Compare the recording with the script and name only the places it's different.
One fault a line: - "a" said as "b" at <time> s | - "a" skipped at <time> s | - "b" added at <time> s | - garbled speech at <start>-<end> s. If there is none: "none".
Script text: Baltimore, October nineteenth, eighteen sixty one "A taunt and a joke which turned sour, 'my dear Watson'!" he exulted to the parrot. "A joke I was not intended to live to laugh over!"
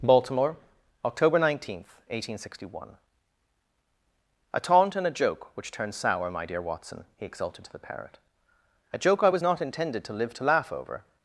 none